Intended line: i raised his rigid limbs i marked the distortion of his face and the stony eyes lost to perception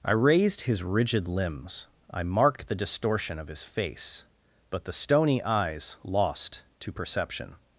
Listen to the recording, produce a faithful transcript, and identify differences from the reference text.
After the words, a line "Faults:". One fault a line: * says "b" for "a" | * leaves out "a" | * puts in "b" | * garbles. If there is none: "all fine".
i raised his rigid limbs i marked the distortion of his face but the stony eyes lost to perception
Faults:
* says "but" for "and"